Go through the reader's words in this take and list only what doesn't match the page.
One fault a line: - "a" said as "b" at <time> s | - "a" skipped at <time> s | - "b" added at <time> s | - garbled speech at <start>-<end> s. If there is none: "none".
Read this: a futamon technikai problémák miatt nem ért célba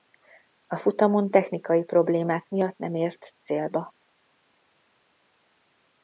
none